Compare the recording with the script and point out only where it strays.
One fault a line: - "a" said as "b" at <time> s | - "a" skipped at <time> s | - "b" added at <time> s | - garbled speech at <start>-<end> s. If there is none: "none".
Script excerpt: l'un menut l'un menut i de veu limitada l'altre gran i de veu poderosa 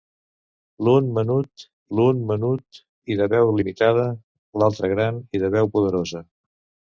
none